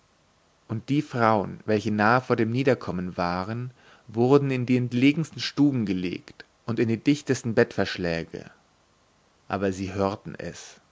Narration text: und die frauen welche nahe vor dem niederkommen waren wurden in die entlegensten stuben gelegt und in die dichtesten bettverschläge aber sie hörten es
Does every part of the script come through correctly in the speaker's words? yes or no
yes